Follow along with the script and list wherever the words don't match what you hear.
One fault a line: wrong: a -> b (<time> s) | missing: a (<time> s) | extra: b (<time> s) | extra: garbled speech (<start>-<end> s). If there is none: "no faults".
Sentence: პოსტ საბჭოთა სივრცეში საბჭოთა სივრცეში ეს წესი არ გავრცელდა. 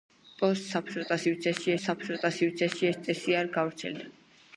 no faults